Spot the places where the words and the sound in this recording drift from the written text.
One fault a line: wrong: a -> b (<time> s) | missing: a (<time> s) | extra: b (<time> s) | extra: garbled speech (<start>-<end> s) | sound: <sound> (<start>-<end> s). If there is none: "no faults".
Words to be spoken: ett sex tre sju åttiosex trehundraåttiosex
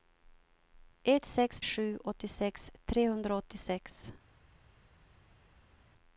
missing: tre (1.6 s)